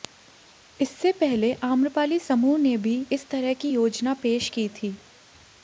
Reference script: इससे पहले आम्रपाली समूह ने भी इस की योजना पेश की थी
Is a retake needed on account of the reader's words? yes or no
yes